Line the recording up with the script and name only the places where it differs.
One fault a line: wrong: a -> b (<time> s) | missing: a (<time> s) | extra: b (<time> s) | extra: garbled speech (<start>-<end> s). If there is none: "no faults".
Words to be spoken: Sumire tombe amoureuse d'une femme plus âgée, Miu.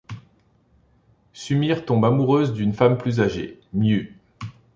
no faults